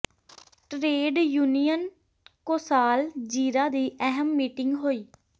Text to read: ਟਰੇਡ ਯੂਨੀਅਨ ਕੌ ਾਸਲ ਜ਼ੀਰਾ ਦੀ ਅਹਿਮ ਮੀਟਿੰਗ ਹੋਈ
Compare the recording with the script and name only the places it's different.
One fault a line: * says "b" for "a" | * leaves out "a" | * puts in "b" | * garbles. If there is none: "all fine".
all fine